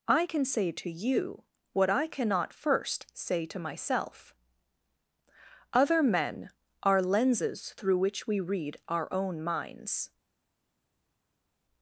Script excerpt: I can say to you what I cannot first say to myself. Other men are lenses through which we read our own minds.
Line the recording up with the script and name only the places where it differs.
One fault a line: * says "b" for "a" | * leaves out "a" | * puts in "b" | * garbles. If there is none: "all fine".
all fine